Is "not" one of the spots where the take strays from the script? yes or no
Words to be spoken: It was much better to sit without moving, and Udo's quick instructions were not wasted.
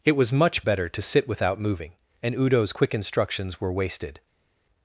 yes